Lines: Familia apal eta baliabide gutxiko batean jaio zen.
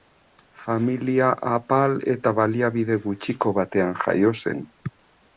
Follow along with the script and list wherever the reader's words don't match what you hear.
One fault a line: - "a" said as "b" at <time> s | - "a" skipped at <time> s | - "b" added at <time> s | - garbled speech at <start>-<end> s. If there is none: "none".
none